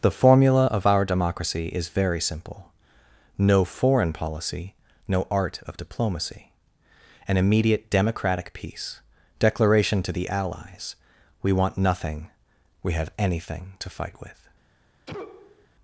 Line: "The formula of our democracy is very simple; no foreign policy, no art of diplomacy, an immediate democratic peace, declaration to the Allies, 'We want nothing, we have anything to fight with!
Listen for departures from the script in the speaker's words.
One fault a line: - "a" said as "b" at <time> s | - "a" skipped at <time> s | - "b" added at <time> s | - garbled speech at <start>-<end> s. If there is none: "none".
none